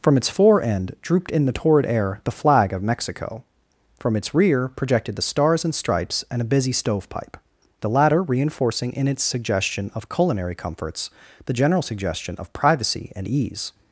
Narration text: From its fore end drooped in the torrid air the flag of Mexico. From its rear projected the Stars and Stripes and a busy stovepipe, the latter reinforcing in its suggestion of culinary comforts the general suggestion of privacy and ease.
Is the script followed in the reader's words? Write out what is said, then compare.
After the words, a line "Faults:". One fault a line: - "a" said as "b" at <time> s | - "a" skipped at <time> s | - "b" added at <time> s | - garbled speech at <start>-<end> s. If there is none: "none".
From its fore end drooped in the torrid air the flag of Mexico. From its rear projected the Stars and Stripes and a busy stovepipe, the latter reinforcing in its suggestion of culinary comforts the general suggestion of privacy and ease.
Faults:
none